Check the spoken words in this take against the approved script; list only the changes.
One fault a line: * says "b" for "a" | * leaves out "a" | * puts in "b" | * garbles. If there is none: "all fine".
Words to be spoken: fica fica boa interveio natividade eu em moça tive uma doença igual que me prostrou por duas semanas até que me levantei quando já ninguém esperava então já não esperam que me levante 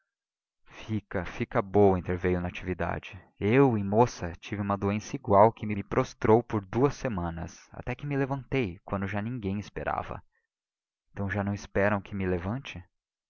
all fine